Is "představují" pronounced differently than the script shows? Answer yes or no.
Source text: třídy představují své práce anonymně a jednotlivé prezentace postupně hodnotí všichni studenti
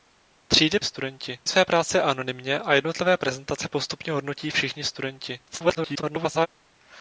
yes